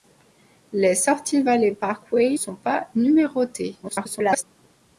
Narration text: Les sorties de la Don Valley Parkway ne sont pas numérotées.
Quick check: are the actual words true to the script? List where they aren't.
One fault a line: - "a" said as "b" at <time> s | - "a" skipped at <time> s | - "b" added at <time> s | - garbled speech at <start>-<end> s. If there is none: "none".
- "de la Don" skipped at 1.4 s
- "ne" skipped at 2.4 s
- garbled speech at 3.8-4.4 s